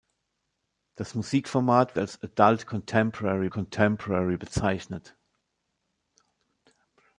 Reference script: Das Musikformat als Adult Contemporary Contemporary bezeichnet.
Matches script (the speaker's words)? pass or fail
pass